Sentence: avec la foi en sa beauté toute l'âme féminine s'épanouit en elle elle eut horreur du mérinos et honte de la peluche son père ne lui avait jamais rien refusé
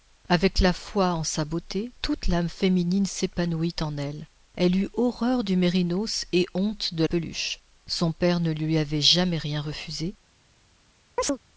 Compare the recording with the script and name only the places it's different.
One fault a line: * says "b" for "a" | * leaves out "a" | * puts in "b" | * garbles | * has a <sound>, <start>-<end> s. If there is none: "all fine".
* leaves out "la"
* has a chirp, 11.2-11.4 s